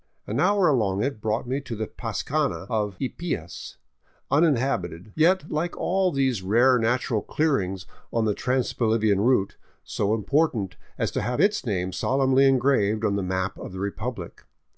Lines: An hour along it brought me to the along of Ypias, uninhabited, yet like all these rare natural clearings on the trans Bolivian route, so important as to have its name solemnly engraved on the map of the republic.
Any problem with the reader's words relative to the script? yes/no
yes